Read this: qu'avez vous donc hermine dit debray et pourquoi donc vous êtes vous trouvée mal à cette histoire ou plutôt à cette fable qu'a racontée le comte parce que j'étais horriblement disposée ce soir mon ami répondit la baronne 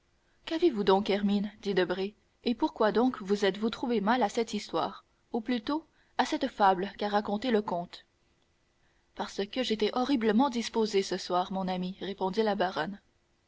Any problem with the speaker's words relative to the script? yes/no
no